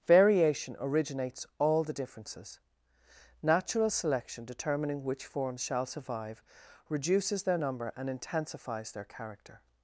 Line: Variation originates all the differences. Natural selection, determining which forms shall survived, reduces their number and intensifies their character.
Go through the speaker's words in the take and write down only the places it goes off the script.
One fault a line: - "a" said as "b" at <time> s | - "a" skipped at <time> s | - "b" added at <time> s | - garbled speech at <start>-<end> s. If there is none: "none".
- "survived" said as "survive" at 5.8 s